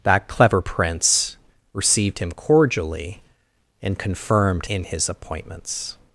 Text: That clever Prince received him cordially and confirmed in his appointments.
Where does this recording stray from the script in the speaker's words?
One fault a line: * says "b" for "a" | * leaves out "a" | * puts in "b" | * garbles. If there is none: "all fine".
all fine